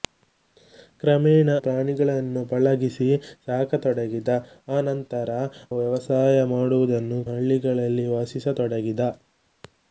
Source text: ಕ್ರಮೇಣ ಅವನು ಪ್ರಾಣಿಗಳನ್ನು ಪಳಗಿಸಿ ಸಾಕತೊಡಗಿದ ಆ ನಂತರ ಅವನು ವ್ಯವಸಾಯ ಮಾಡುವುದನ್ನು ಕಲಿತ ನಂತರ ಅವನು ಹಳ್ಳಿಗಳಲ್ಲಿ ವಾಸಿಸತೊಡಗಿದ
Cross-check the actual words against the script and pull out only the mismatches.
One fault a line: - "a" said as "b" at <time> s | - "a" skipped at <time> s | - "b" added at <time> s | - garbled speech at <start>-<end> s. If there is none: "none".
- "ಅವನು" skipped at 1.5 s
- "ಅವನು" skipped at 5.3 s
- "ಕಲಿತ ನಂತರ ಅವನು" skipped at 7.2 s